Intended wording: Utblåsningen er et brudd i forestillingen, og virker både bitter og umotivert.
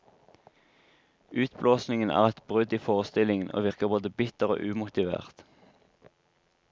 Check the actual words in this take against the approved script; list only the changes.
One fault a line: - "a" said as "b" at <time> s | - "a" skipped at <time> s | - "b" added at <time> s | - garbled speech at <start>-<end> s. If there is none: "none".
none